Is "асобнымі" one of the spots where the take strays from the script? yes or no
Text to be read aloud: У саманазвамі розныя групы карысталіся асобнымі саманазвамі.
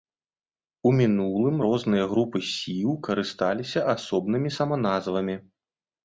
no